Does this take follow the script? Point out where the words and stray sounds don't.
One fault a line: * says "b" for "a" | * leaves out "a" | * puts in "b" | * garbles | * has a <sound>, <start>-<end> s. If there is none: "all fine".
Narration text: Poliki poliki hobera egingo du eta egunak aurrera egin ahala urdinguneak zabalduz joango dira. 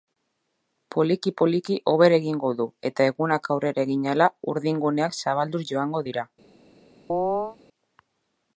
* has a chirp, 7.1-7.6 s